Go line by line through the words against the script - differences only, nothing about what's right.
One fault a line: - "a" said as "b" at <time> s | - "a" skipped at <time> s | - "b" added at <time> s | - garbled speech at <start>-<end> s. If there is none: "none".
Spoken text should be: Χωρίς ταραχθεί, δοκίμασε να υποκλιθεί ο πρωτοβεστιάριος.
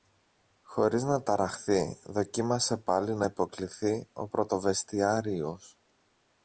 - "να" added at 1.0 s
- "πάλι" added at 2.8 s